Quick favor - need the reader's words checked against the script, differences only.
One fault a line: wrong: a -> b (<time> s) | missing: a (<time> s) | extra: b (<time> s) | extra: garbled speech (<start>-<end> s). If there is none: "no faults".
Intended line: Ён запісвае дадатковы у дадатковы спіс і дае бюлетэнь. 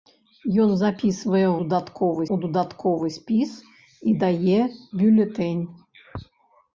no faults